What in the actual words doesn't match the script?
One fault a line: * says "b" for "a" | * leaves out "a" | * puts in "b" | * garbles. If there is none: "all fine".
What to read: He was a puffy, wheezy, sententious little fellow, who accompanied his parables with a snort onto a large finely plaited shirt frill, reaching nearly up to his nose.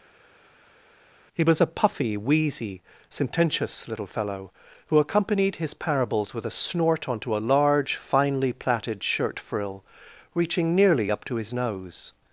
all fine